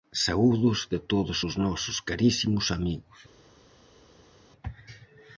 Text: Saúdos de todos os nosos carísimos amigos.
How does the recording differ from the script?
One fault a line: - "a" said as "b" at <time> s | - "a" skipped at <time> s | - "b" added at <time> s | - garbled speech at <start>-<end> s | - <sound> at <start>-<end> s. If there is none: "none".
none